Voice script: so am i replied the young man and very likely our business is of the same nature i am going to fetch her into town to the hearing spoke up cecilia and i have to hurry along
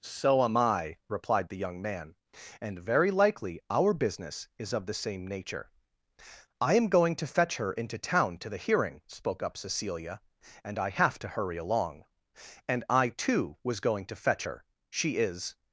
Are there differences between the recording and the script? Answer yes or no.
yes